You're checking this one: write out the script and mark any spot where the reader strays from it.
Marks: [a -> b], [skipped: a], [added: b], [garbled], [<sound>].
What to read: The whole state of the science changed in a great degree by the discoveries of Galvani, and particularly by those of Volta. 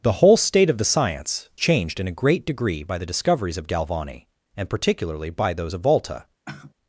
The whole state of the science changed in a great degree by the discoveries of Galvani, and particularly by those of Volta. [sigh]